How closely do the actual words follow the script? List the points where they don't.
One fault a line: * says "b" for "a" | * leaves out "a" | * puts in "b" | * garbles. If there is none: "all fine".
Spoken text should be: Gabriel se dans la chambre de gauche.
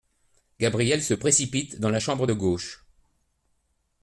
* puts in "précipite"